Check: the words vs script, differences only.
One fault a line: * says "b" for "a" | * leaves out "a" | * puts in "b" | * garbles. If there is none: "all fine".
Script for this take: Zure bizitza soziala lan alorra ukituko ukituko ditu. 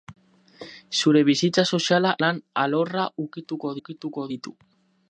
all fine